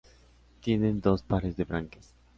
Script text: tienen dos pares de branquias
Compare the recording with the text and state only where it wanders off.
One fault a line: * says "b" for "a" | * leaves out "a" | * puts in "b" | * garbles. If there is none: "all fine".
all fine